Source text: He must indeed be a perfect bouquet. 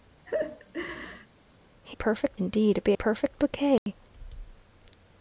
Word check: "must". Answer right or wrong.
wrong